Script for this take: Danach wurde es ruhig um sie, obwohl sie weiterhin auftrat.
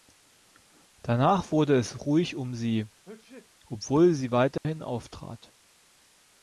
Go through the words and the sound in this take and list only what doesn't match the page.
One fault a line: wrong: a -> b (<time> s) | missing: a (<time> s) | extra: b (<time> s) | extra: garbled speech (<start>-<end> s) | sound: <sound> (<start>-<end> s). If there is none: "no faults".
sound: sneeze (3.0-3.5 s)
sound: dropout (4.6-4.6 s)